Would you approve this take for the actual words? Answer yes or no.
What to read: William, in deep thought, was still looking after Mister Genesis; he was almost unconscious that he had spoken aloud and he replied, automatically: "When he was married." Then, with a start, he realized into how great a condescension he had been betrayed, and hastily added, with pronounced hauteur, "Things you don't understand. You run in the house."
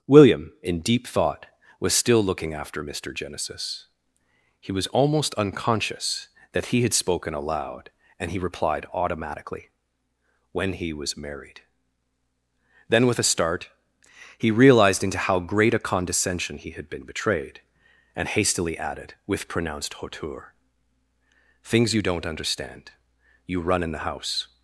yes